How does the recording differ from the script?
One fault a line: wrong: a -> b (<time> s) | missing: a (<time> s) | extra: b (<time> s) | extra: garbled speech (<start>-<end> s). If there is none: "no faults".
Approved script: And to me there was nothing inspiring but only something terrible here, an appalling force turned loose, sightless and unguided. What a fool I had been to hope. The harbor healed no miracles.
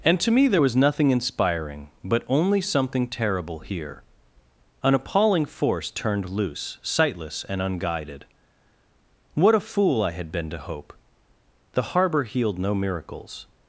no faults